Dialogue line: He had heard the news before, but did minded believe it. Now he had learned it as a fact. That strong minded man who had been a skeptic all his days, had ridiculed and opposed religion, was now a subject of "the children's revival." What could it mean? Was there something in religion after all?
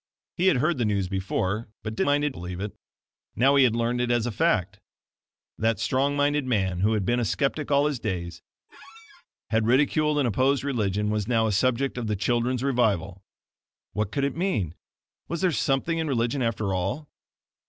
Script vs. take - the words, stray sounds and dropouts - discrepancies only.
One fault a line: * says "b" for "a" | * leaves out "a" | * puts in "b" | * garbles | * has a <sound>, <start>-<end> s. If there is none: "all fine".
* has a squeak, 8.7-9.3 s